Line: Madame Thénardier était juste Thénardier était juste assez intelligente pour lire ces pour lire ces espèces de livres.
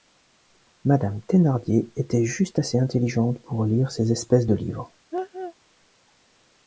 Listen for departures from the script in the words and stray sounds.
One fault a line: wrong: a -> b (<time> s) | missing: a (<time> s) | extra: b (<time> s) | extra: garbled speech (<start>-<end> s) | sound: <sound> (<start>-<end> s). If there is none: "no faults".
missing: Thénardier était juste (2.6 s)
missing: pour lire ces (4.1 s)
sound: laugh (5.1-5.5 s)